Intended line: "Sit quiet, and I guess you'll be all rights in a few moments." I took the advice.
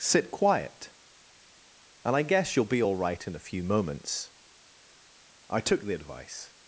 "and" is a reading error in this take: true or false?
false